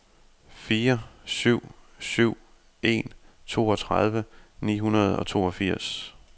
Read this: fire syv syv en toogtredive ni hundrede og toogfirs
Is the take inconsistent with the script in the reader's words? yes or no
no